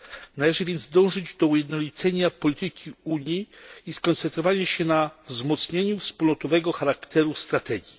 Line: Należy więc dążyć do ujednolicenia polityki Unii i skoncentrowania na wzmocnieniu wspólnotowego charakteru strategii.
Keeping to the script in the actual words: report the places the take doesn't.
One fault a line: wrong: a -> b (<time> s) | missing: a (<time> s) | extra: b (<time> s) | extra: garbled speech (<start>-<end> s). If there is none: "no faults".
extra: się (4.7 s)